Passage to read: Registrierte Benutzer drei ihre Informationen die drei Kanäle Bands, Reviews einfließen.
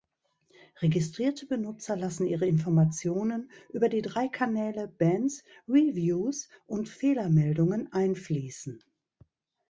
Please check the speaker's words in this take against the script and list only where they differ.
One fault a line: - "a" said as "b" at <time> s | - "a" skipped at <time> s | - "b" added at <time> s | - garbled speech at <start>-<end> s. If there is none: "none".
- "drei" said as "lassen" at 1.9 s
- "über" added at 3.7 s
- "und Fehlermeldungen" added at 6.6 s